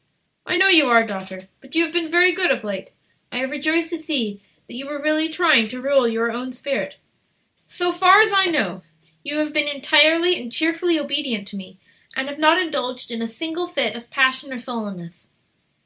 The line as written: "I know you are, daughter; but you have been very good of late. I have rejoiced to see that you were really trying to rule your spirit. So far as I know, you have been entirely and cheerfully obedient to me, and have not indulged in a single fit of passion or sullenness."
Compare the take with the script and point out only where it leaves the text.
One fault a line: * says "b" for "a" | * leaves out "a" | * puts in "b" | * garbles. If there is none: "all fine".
* puts in "own"